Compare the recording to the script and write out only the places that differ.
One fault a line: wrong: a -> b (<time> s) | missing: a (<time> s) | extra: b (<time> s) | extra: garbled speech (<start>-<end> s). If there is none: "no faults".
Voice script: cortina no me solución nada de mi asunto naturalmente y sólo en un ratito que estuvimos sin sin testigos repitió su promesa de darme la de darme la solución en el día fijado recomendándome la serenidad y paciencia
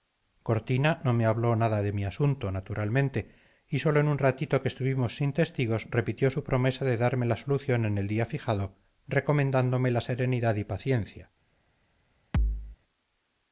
wrong: solución -> habló (1.3 s)
missing: sin (5.3 s)
missing: de darme la (7.4 s)